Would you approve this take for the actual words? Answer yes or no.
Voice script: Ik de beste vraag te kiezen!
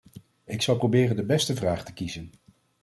no